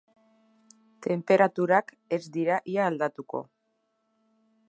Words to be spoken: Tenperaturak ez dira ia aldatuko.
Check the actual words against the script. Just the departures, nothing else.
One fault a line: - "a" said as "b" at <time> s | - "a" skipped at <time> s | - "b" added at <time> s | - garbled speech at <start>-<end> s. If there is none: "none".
none